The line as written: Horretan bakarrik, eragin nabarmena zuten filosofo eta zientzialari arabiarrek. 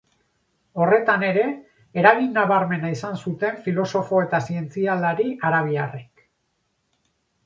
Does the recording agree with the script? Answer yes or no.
no